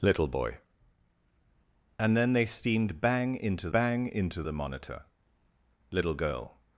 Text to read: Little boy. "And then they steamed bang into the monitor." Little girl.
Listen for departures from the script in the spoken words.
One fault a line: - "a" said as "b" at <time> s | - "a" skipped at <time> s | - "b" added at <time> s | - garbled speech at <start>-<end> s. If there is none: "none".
- "bang into" added at 3.7 s